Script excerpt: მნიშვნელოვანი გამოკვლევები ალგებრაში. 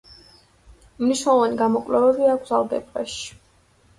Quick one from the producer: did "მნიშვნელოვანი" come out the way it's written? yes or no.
yes